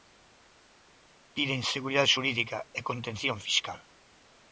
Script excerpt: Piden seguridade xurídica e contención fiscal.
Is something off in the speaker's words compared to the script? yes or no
no